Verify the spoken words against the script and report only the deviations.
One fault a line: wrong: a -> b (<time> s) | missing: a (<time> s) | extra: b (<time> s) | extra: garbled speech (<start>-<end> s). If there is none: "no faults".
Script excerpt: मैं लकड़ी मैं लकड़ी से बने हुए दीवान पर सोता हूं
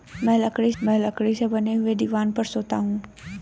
no faults